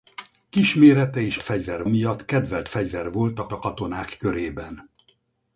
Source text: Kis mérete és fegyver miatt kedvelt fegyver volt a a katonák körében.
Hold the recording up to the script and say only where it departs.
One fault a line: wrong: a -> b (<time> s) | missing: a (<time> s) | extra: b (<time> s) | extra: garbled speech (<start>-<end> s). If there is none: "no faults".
no faults